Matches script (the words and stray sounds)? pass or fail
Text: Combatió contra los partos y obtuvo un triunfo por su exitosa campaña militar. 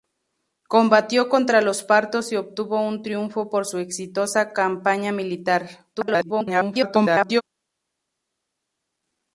fail